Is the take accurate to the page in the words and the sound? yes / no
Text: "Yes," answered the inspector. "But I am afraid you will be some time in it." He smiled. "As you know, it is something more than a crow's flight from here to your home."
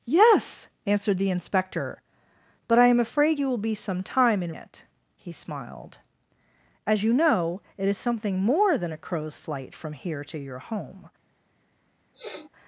no